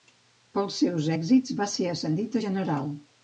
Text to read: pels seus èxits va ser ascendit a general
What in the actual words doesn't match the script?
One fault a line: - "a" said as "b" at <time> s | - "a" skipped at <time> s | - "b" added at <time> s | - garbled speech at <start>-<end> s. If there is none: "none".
none